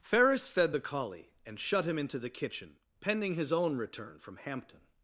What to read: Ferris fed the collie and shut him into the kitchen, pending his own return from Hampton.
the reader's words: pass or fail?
pass